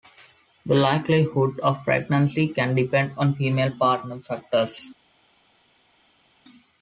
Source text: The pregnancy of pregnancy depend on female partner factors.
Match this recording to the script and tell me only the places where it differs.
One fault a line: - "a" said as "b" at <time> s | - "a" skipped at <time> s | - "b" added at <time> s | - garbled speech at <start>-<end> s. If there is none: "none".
- "pregnancy" said as "likelihood" at 0.7 s
- "can" added at 2.5 s